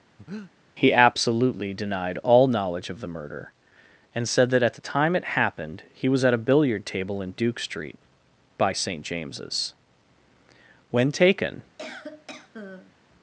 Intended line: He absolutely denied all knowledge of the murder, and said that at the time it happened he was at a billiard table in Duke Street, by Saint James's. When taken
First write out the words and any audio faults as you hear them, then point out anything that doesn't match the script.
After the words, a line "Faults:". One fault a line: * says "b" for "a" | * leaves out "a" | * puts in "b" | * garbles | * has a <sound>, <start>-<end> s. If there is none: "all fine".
He absolutely denied all knowledge of the murder, and said that at the time it happened he was at a billiard table in Duke Street, by Saint James's. When taken
Faults:
* has a breath, 0.2-0.5 s
* has a cough, 11.8-12.9 s